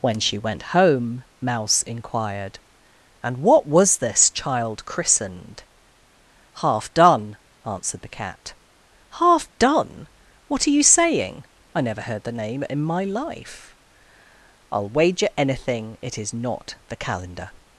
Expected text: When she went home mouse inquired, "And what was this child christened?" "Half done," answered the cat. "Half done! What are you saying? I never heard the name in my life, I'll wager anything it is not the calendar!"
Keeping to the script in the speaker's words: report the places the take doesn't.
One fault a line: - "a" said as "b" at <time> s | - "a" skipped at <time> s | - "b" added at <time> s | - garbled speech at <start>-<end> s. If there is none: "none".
none